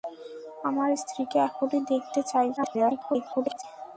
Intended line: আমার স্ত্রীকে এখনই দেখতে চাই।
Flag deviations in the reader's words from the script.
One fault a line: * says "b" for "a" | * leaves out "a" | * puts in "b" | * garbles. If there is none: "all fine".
* garbles